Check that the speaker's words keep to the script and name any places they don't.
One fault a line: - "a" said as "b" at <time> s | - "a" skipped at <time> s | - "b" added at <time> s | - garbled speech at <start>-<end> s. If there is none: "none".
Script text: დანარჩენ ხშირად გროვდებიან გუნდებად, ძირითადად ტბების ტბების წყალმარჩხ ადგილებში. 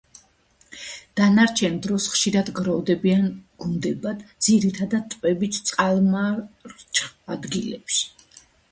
- "დროს" added at 1.9 s
- "ტბების" skipped at 5.6 s